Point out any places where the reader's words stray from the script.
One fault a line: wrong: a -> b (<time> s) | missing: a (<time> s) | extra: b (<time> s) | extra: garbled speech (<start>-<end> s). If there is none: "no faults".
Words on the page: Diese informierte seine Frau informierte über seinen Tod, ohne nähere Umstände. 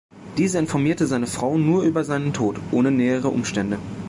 wrong: informierte -> nur (1.6 s)